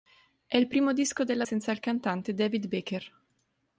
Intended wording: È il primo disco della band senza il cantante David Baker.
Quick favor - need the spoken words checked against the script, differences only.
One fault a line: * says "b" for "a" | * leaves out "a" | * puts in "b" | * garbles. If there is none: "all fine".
* leaves out "band"